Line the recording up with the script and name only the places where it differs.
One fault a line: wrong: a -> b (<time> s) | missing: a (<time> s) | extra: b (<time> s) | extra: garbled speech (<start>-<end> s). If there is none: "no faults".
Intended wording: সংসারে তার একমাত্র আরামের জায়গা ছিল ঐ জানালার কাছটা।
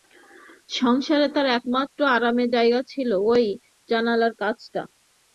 no faults